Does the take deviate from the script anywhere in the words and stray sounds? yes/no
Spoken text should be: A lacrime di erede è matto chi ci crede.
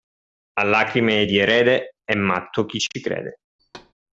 yes